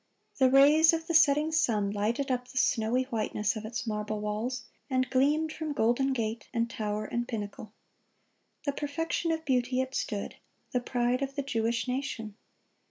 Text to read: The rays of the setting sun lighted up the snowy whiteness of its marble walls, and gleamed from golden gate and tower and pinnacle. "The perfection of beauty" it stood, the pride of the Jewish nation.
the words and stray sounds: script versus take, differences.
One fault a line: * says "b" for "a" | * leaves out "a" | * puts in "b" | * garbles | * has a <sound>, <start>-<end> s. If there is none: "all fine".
all fine